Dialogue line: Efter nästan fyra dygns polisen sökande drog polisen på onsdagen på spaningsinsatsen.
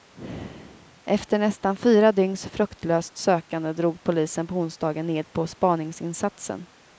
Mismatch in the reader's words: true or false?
true